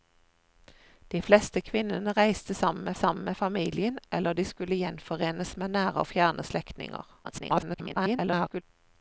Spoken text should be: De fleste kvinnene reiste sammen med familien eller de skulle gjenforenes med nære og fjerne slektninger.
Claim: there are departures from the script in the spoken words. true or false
true